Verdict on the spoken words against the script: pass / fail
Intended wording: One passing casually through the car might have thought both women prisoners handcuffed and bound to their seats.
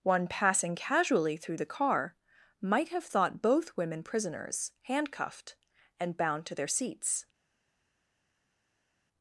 pass